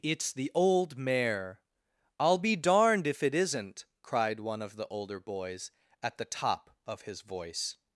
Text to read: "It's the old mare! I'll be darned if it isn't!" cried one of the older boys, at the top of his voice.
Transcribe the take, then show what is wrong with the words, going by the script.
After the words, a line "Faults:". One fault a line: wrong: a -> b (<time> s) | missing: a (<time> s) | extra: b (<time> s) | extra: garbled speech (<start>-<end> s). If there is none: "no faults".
"It's the old mare! I'll be darned if it isn't!" cried one of the older boys, at the top of his voice.
Faults:
no faults